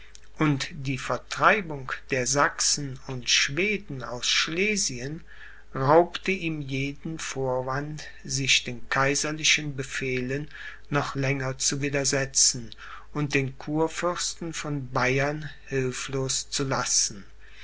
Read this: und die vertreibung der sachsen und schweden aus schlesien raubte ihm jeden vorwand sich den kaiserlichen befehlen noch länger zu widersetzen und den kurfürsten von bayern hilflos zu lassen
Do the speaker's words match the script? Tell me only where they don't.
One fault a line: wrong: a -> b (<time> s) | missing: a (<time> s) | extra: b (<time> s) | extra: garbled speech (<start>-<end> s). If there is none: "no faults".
no faults